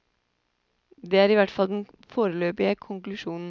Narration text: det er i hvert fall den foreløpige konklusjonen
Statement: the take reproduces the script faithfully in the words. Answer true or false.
true